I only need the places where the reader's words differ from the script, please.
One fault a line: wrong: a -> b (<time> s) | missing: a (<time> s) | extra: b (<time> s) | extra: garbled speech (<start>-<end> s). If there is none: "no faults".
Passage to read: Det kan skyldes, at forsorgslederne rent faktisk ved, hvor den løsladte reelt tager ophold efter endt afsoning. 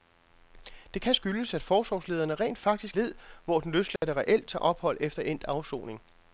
no faults